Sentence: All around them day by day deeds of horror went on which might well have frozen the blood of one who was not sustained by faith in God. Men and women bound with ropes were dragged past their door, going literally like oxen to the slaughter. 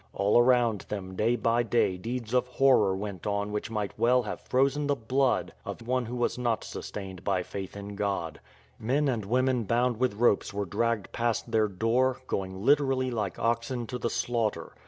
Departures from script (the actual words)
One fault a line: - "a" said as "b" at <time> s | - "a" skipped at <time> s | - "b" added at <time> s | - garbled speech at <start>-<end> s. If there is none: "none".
none